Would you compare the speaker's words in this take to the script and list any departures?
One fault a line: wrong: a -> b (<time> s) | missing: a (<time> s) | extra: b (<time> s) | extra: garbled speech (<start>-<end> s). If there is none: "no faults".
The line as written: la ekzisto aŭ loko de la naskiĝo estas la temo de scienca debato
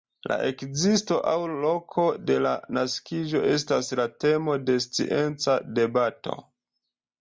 no faults